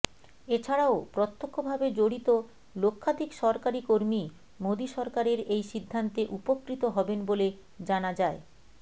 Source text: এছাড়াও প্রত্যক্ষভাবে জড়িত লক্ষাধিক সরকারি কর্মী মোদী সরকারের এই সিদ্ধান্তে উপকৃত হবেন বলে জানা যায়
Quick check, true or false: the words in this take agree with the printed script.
true